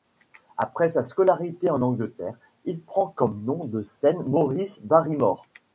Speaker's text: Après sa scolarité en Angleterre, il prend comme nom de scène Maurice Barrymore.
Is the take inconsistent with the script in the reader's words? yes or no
no